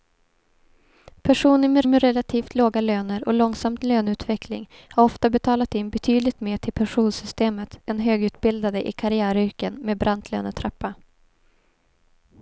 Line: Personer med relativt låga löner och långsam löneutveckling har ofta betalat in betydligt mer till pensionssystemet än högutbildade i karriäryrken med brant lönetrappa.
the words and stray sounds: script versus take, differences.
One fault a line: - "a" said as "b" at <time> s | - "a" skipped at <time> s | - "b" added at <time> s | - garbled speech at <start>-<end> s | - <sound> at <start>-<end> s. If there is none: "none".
- "med" added at 1.9 s